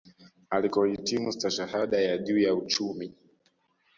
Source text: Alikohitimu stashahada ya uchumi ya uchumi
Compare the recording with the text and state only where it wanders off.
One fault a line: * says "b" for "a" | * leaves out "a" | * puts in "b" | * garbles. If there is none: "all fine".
* says "juu" for "uchumi"